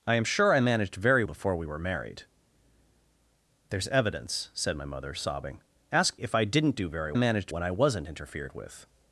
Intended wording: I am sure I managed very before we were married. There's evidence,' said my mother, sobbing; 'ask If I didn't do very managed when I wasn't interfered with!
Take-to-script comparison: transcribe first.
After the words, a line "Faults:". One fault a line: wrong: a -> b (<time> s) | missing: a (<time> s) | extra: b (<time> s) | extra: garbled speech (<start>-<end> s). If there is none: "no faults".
I am sure I managed very before we were married. There's evidence,' said my mother, sobbing; 'ask If I didn't do very managed when I wasn't interfered with!
Faults:
no faults